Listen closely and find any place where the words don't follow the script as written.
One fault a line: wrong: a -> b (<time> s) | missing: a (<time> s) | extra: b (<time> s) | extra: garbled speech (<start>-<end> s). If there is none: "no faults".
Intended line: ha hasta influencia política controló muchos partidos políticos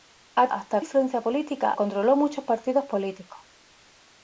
no faults